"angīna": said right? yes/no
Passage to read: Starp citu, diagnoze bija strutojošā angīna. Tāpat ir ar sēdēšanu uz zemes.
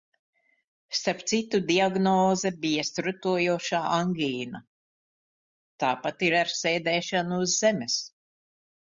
yes